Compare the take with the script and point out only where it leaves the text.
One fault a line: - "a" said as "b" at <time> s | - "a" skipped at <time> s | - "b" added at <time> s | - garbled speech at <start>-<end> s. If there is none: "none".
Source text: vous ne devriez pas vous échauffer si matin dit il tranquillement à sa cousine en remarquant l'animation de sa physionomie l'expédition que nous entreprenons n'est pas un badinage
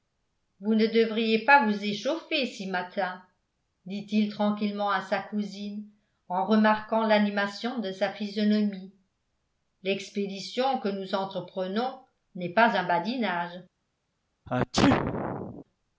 none